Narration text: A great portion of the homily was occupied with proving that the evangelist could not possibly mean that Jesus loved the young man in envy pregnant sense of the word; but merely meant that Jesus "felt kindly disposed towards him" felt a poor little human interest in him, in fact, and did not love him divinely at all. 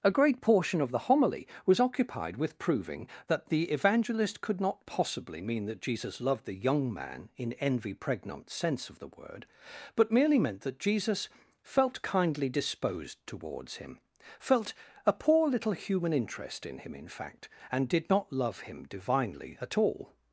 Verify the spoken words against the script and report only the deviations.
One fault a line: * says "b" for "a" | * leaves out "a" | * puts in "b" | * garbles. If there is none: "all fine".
all fine